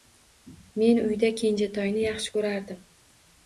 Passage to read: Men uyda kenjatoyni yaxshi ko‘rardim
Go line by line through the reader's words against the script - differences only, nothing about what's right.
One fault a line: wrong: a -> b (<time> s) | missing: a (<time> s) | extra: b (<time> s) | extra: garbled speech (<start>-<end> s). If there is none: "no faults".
no faults